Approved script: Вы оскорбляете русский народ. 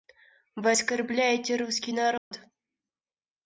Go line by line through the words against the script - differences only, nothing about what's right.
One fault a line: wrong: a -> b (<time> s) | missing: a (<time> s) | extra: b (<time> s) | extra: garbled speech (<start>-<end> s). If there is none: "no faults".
no faults